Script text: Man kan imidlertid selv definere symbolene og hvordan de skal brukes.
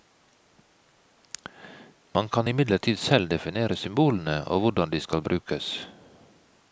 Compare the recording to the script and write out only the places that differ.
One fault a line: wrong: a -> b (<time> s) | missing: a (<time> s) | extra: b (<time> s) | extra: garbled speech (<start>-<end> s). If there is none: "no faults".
no faults